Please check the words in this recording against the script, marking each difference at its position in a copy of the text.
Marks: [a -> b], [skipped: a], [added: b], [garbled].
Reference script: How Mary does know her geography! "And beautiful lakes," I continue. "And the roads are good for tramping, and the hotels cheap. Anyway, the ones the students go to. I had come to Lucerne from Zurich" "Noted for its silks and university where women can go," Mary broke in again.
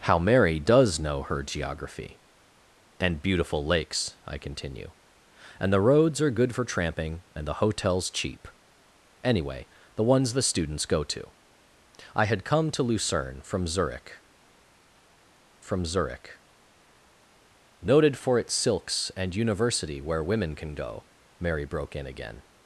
How Mary does know her geography! "And beautiful lakes," I continue. "And the roads are good for tramping, and the hotels cheap. Anyway, the ones the students go to. I had come to Lucerne from Zurich" [added: from Zurich] "Noted for its silks and university where women can go," Mary broke in again.